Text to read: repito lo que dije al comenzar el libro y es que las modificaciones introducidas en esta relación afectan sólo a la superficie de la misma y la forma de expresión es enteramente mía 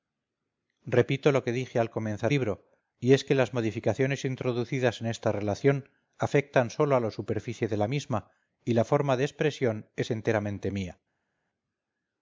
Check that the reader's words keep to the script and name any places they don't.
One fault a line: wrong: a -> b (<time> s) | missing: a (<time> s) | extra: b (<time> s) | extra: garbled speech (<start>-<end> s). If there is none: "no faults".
missing: el (2.3 s)